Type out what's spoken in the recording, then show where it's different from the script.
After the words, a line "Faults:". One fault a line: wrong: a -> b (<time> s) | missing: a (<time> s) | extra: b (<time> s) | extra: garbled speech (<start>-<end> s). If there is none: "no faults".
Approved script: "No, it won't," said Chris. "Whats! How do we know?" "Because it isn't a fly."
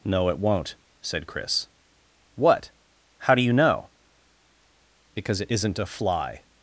"No, it won't," said Chris. "What! How do you know?" "Because it isn't a fly."
Faults:
wrong: Whats -> What (2.4 s)
wrong: we -> you (3.4 s)